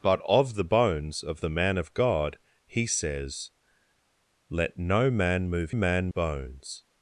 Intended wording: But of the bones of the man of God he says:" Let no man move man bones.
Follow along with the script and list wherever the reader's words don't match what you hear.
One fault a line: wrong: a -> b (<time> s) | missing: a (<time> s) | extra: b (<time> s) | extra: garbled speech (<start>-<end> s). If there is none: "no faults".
no faults